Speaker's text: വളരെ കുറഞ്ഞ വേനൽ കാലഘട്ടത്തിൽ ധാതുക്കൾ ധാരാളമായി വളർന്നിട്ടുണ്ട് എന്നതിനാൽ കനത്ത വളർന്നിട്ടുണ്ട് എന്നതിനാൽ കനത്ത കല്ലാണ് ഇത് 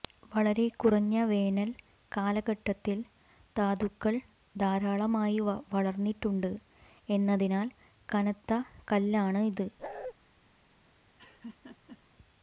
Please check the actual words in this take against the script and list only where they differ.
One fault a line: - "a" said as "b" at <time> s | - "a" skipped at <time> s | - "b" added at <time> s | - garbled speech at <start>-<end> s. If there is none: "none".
- "വളർന്നിട്ടുണ്ട് എന്നതിനാൽ കനത്ത" skipped at 8.6 s